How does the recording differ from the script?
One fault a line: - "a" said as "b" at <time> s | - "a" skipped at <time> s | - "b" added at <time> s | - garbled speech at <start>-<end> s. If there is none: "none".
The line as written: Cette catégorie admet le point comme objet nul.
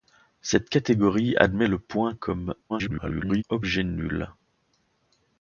- garbled speech at 2.7-3.4 s